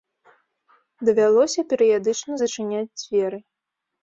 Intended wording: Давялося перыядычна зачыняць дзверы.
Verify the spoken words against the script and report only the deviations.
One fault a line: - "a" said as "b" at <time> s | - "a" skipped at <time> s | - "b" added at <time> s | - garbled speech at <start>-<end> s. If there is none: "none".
none